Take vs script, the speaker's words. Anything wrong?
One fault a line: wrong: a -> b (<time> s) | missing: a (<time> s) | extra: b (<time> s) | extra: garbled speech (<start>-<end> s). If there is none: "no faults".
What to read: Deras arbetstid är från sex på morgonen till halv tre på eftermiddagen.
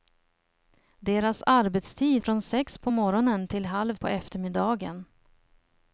missing: är (2.2 s)
missing: tre (4.0 s)